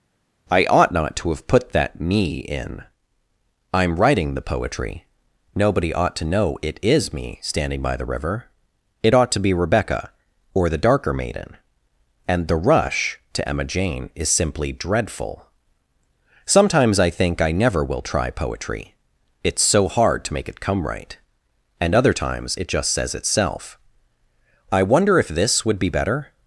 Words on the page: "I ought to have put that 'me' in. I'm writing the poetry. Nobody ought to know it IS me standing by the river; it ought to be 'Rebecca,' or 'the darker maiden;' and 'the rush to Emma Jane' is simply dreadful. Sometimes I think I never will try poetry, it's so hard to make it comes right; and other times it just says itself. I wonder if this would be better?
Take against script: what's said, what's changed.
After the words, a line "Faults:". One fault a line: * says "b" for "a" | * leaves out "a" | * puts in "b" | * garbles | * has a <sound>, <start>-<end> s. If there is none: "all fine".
"I ought not to have put that 'me' in. I'm writing the poetry. Nobody ought to know it IS me standing by the river; it ought to be 'Rebecca,' or 'the darker maiden;' and 'the rush to Emma Jane' is simply dreadful. Sometimes I think I never will try poetry, it's so hard to make it come right; and other times it just says itself. I wonder if this would be better?
Faults:
* puts in "not"
* says "come" for "comes"